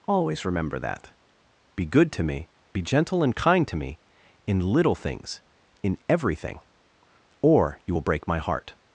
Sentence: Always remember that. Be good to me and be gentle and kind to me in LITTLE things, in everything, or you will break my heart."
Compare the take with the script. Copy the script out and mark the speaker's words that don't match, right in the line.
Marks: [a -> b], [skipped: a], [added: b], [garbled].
Always remember that. Be good to me [skipped: and] be gentle and kind to me in LITTLE things, in everything, or you will break my heart."